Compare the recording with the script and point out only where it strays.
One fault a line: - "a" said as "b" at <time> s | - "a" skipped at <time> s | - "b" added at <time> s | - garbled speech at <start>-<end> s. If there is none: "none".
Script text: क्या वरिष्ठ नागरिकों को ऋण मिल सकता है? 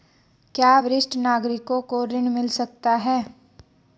none